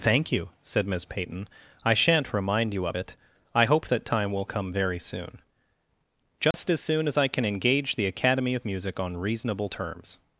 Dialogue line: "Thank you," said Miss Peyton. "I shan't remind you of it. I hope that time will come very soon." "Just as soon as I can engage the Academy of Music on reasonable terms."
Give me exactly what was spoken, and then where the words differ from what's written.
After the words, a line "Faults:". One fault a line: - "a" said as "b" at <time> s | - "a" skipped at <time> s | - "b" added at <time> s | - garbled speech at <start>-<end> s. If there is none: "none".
"Thank you," said Miss Peyton. "I shan't remind you of it. I hope that time will come very soon." "Just as soon as I can engage the Academy of Music on reasonable terms."
Faults:
none